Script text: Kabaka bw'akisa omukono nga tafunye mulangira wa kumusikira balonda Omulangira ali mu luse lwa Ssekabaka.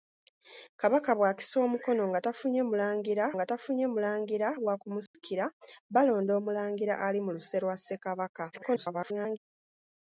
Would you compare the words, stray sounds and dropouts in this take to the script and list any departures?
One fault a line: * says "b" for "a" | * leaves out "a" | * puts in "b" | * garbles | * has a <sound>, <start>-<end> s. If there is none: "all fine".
* puts in "nga tafunye mulangira"
* has a dropout, 5.1-5.1 s
* garbles